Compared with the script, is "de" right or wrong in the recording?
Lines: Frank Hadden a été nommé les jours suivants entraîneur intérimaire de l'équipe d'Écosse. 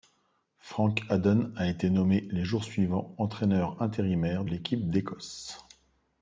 wrong